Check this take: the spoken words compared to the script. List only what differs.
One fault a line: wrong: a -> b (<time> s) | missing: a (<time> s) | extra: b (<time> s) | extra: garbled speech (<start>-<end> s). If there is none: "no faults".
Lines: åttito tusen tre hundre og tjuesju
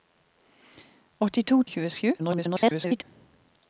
missing: tusen tre hundre (1.6 s)
extra: garbled speech (2.2-3.0 s)